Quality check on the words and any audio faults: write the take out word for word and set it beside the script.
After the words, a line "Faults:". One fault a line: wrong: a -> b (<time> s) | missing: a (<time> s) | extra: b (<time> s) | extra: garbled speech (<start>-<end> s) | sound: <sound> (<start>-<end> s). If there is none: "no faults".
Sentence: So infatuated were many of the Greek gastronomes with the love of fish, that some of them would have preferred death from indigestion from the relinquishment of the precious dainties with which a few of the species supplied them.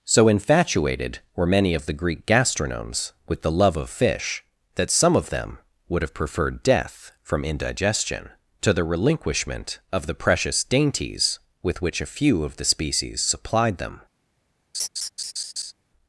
So infatuated were many of the Greek gastronomes with the love of fish, that some of them would have preferred death from indigestion to the relinquishment of the precious dainties with which a few of the species supplied them.
Faults:
wrong: from -> to (8.6 s)
sound: laugh (14.7-15.7 s)